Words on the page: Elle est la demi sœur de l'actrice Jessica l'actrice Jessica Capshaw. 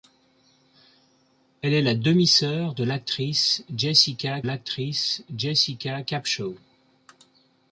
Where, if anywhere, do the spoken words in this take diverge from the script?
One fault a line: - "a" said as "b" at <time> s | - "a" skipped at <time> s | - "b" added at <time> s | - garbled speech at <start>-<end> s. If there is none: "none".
none